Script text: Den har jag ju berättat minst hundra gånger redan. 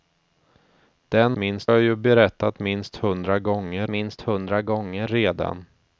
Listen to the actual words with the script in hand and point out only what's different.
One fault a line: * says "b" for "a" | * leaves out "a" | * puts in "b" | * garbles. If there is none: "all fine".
* says "minst" for "har"
* puts in "minst hundra gånger"